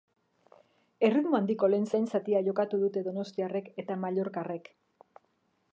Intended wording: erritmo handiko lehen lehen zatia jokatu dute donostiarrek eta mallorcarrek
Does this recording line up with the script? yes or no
yes